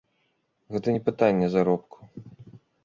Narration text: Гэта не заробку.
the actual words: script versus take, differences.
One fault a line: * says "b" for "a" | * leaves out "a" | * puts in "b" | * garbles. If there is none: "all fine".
* puts in "пытанне"